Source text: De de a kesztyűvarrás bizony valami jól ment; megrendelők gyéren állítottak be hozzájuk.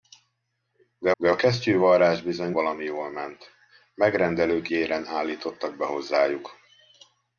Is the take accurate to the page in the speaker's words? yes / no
yes